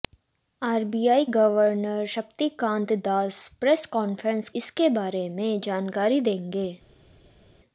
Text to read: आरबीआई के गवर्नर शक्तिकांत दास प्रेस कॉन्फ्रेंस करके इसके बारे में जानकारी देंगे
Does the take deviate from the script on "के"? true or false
true